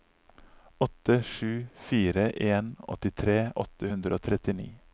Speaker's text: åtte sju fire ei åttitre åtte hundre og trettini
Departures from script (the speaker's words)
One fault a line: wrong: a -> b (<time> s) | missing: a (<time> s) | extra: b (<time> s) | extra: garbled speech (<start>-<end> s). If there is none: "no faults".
wrong: ei -> en (2.3 s)